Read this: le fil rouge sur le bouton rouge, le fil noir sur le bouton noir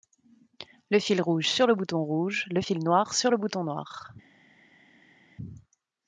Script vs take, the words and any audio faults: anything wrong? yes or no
no